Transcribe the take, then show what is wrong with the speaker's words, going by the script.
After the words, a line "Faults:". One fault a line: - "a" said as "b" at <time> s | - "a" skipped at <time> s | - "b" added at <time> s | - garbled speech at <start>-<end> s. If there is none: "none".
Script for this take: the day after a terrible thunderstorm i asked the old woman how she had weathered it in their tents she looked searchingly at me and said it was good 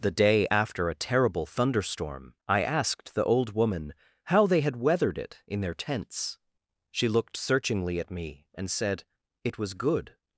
the day after a terrible thunderstorm i asked the old woman how they had weathered it in their tents she looked searchingly at me and said it was good
Faults:
- "she" said as "they" at 4.5 s